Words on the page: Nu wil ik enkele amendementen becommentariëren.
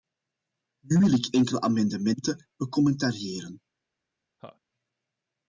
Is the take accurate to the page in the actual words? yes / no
yes